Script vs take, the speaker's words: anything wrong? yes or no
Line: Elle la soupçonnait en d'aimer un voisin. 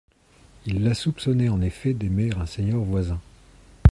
yes